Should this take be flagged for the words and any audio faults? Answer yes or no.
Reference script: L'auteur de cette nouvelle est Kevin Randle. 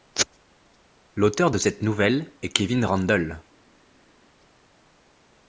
no